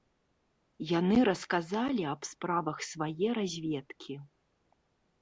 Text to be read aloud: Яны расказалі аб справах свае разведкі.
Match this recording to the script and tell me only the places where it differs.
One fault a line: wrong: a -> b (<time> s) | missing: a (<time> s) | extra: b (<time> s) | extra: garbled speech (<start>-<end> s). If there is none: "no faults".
no faults